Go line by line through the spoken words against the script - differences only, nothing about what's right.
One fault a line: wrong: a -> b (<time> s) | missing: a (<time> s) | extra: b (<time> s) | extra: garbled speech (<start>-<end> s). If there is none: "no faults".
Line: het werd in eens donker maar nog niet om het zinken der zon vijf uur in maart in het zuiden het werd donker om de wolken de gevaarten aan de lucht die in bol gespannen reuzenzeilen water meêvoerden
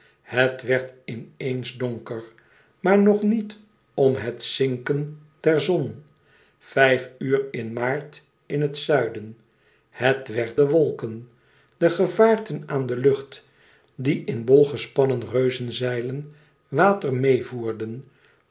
missing: donker om (10.6 s)